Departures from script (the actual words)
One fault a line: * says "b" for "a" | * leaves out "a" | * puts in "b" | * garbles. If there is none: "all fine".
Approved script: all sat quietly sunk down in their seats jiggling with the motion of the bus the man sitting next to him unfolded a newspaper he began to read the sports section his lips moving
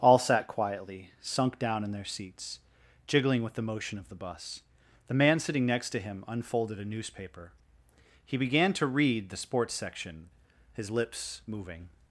all fine